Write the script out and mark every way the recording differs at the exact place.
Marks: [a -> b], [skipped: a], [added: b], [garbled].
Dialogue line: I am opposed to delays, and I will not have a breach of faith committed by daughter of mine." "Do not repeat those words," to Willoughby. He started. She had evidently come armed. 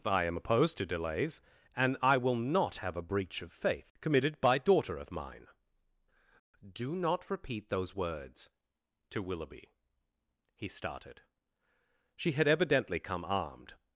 I am opposed to delays, and I will not have a breach of faith committed by daughter of mine." "Do not repeat those words," to Willoughby. He started. She had evidently come armed.